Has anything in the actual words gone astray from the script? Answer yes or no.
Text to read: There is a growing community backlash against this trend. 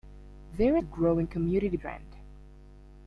yes